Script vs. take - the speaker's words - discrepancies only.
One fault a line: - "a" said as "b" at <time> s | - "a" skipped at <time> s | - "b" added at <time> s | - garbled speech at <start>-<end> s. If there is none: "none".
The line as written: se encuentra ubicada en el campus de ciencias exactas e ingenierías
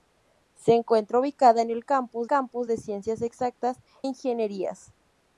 - "campus" added at 2.2 s
- "e" skipped at 3.8 s